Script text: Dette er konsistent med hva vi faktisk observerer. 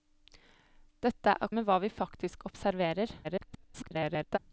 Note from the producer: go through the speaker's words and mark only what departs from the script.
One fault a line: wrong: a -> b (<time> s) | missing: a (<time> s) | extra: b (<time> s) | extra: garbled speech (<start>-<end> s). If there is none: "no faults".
missing: konsistent (1.5 s)
extra: garbled speech (3.2-4.4 s)